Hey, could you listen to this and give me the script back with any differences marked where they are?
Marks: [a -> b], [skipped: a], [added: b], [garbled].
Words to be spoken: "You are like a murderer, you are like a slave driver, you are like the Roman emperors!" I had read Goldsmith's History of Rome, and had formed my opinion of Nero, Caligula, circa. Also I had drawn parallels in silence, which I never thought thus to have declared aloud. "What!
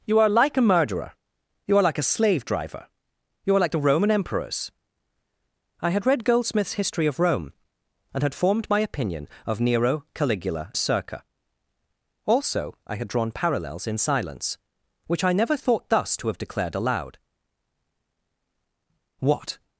"You are like a murderer, you are like a slave driver, you are like the Roman emperors!" I had read Goldsmith's History of Rome, and had formed my opinion of Nero, Caligula, circa. Also I had drawn parallels in silence, which I never thought thus to have declared aloud. "What!